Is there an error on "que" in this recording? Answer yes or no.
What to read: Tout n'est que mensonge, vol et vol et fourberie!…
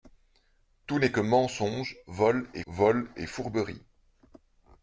no